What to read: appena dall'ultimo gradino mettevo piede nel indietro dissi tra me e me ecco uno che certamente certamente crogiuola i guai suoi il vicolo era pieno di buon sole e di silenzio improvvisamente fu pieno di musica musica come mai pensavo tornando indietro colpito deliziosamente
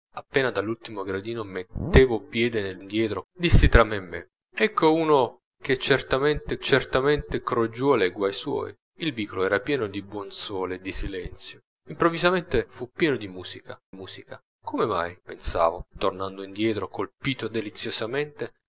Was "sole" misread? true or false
false